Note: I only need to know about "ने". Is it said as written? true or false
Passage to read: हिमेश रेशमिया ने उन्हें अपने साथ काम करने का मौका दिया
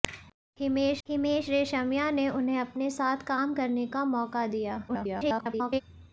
true